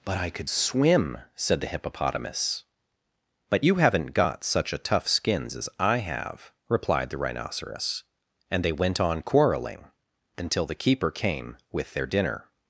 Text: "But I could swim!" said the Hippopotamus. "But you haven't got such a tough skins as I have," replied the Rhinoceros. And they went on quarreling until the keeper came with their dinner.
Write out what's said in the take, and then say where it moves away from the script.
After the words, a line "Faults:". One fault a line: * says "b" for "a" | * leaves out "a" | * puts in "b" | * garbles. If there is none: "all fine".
"But I could swim!" said the Hippopotamus. "But you haven't got such a tough skins as I have," replied the Rhinoceros. And they went on quarreling until the keeper came with their dinner.
Faults:
all fine